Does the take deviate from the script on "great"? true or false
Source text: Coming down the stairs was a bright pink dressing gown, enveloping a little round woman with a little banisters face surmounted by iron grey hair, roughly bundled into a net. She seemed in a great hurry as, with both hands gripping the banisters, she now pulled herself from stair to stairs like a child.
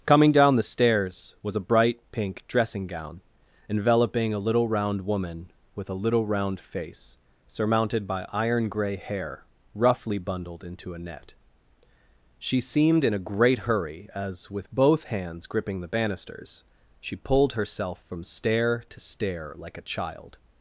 false